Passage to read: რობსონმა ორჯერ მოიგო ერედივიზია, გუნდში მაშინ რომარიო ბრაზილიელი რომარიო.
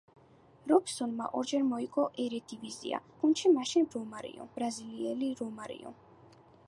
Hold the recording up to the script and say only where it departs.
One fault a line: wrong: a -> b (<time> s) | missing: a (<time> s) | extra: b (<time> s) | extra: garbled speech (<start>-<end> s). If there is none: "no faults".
no faults